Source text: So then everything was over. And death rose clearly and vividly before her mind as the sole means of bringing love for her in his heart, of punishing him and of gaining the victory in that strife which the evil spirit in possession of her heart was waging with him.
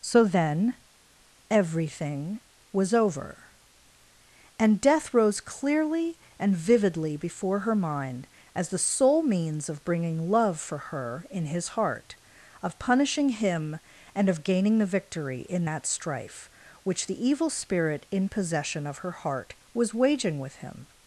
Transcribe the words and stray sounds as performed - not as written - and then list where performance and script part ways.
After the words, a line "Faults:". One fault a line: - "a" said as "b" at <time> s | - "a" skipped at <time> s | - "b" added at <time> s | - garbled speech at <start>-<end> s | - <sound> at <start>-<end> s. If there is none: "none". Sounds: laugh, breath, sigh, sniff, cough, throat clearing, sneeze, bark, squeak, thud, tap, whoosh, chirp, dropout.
So then everything was over. And death rose clearly and vividly before her mind as the sole means of bringing love for her in his heart, of punishing him and of gaining the victory in that strife which the evil spirit in possession of her heart was waging with him.
Faults:
none